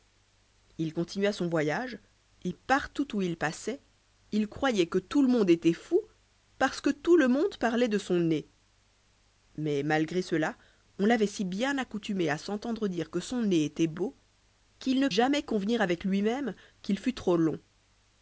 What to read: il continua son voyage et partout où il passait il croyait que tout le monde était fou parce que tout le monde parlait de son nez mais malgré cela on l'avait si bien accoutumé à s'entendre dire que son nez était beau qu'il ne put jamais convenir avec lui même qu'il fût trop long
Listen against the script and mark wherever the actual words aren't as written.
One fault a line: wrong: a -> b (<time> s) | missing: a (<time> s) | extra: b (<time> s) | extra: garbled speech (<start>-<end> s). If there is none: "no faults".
missing: put (15.1 s)